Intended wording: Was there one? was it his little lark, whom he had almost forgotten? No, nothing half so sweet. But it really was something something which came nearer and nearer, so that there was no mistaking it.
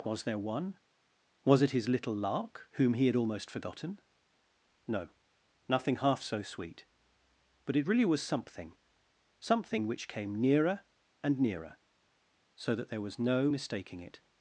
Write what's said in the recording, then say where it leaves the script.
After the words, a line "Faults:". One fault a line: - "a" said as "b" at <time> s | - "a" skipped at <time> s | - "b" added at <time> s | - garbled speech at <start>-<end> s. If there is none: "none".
Was there one? was it his little lark, whom he had almost forgotten? No, nothing half so sweet. But it really was something something which came nearer and nearer, so that there was no mistaking it.
Faults:
none